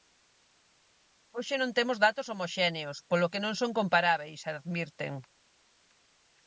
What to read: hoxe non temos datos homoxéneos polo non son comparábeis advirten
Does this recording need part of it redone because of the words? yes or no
yes